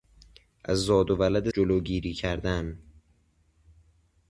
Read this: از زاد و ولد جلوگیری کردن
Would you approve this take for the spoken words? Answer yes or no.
yes